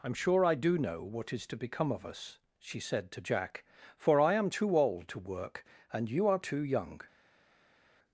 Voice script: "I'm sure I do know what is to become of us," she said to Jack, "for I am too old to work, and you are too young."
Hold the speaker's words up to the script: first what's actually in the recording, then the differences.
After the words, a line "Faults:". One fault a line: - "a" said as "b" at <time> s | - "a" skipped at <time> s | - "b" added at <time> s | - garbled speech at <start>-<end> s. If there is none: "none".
"I'm sure I do know what is to become of us," she said to Jack, "for I am too old to work, and you are too young."
Faults:
none